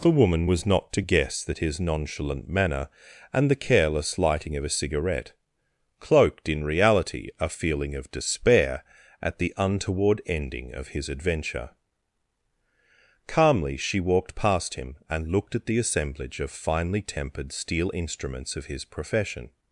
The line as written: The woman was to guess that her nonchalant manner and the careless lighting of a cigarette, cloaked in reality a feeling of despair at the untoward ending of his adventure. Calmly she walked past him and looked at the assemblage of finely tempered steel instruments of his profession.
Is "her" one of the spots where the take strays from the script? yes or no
yes